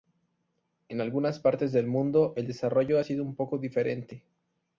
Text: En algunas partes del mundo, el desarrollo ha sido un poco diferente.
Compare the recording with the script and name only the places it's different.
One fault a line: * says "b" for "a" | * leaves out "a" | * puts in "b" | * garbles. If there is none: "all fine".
all fine